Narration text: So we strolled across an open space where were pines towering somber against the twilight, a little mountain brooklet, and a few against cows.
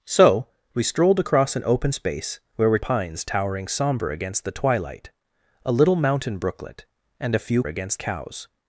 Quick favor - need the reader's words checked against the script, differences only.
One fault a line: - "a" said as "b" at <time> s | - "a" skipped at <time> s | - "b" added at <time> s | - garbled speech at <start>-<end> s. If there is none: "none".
none